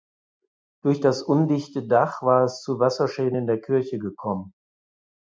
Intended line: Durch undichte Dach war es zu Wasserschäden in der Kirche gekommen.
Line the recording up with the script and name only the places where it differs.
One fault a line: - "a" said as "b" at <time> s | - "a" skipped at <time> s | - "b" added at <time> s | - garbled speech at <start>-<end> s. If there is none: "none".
- "das" added at 1.0 s